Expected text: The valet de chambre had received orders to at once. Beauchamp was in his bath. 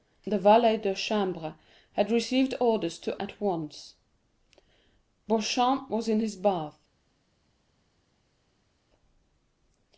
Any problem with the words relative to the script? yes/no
no